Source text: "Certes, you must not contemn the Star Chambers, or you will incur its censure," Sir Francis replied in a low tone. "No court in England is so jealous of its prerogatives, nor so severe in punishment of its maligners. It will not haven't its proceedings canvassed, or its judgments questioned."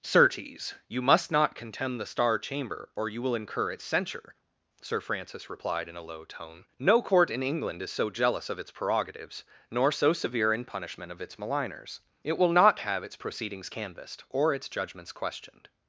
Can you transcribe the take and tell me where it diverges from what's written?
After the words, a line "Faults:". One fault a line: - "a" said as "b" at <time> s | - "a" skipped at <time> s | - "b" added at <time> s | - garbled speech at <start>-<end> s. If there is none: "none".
"Certes, you must not contemn the Star Chamber, or you will incur its censure," Sir Francis replied in a low tone. "No court in England is so jealous of its prerogatives, nor so severe in punishment of its maligners. It will not have its proceedings canvassed, or its judgments questioned."
Faults:
- "Chambers" said as "Chamber" at 2.4 s
- "haven't" said as "have" at 12.8 s